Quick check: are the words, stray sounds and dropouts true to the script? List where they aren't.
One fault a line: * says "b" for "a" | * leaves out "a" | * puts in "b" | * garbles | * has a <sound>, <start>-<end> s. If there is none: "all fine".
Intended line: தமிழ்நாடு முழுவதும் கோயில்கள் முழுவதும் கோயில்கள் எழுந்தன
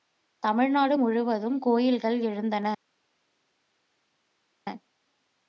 * leaves out "முழுவதும் கோயில்கள்"